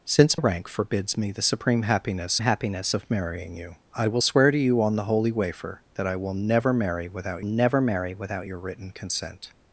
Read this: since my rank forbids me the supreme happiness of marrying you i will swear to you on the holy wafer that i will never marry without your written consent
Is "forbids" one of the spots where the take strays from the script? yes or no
no